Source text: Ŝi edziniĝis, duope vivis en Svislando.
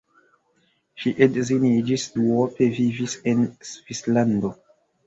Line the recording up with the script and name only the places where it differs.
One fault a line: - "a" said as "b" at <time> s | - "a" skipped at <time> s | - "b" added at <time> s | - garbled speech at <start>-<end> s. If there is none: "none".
none